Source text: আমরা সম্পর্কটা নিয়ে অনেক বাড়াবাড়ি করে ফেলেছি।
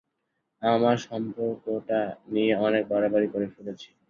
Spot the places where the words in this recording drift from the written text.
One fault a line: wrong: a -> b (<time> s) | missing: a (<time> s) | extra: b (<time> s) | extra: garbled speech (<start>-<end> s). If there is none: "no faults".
no faults